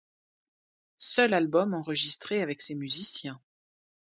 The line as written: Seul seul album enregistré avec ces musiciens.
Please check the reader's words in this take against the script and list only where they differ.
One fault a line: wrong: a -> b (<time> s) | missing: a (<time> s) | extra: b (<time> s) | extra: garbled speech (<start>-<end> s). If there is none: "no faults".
missing: seul (1.4 s)